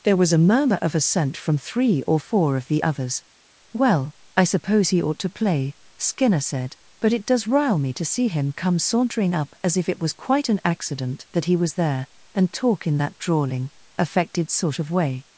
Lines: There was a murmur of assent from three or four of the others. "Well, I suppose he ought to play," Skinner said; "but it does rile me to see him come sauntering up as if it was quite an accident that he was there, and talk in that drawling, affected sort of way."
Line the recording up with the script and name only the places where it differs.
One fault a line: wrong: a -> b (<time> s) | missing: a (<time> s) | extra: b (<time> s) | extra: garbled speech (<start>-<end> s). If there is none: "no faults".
no faults